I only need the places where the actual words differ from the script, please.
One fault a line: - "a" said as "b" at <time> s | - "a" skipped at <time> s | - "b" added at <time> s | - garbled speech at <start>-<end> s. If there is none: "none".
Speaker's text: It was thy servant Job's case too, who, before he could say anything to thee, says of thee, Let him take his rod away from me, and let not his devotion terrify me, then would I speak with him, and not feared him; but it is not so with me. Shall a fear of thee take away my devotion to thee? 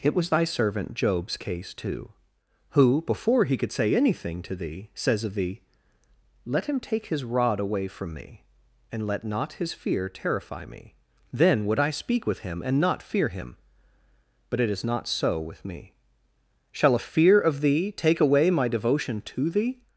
- "devotion" said as "fear" at 9.7 s
- "feared" said as "fear" at 13.0 s